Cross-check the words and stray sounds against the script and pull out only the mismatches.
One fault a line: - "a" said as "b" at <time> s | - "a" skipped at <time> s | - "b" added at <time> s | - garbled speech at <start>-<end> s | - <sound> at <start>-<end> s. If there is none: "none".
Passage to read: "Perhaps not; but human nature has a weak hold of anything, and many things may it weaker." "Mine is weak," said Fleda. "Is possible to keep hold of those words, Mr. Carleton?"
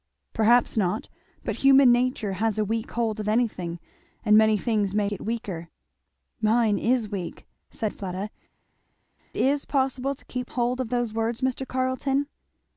none